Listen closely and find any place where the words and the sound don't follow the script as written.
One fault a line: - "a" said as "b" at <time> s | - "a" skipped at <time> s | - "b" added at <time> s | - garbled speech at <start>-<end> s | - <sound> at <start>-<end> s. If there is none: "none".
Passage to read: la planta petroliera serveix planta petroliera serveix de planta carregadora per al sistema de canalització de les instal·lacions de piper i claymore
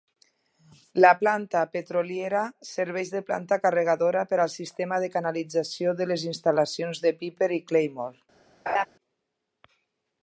- "planta petroliera serveix" skipped at 3.1 s
- laugh at 8.7-8.9 s